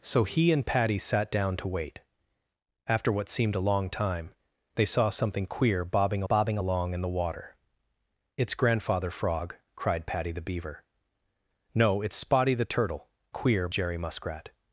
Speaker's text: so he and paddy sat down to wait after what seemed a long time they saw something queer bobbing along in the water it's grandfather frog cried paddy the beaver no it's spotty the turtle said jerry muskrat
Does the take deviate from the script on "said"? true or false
true